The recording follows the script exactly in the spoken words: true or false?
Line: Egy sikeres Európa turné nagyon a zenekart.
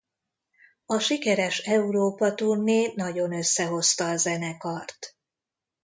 false